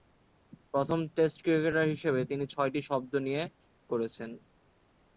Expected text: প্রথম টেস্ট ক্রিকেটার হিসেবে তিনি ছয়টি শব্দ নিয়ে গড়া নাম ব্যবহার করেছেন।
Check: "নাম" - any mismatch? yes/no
yes